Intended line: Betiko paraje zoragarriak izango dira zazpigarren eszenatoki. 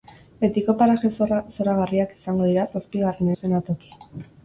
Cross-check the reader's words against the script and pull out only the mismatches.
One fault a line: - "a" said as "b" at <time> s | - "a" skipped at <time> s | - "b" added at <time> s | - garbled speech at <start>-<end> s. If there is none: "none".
none